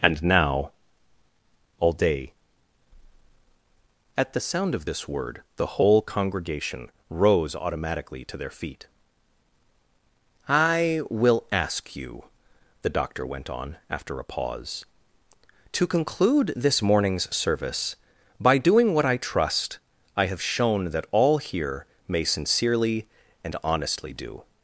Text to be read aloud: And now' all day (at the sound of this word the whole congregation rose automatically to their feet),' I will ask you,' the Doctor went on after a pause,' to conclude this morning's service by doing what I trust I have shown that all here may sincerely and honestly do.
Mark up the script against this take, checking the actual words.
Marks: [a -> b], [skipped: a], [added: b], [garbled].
And now' all day (at the sound of this word the whole congregation rose automatically to their feet),' I will ask you,' the Doctor went on after a pause,' to conclude this morning's service by doing what I trust I have shown that all here may sincerely and honestly do.